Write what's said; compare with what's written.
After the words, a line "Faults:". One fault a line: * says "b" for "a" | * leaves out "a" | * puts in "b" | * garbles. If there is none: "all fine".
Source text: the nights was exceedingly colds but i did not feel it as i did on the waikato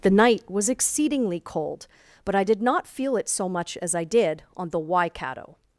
the night was exceedingly cold but i did not feel it so much as i did on the waikato
Faults:
* says "night" for "nights"
* says "cold" for "colds"
* puts in "so much"